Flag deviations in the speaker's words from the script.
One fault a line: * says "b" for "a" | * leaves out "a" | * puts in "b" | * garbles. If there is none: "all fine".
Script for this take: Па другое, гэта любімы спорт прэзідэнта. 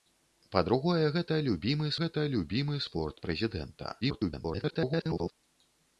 * puts in "гэта любімы"
* garbles